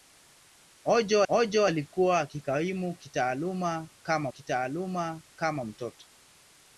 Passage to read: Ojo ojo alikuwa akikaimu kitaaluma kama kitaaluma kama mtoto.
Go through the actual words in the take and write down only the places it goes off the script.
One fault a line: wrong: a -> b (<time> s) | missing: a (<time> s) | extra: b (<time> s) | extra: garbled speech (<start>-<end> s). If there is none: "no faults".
no faults